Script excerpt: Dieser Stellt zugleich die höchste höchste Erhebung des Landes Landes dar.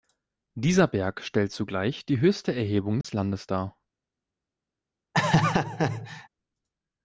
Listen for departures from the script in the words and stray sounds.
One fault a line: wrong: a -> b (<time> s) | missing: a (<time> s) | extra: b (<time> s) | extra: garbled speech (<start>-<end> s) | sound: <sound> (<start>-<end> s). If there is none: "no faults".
extra: Berg (0.9 s)
missing: höchste (2.5 s)
sound: dropout (3.0-3.0 s)
missing: Landes (3.5 s)
sound: laugh (5.1-6.3 s)